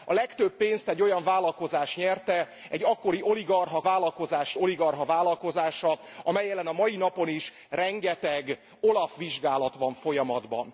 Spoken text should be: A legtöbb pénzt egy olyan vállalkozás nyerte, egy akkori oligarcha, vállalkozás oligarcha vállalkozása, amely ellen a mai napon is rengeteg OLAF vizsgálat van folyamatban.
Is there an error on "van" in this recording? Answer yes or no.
no